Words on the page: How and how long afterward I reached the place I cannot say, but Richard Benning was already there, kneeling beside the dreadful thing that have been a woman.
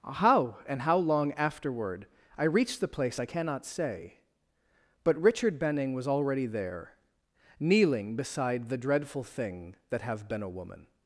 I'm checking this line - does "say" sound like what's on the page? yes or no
yes